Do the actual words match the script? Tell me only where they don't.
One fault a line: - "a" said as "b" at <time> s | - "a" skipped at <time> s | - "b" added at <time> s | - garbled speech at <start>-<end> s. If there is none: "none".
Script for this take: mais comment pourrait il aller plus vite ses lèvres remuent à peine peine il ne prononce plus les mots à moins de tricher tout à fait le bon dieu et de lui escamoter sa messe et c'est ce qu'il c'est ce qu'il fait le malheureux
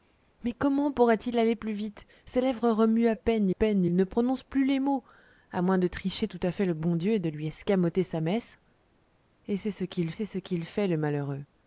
none